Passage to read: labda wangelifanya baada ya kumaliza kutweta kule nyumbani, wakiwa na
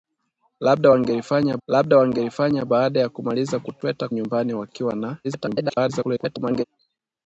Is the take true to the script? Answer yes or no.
no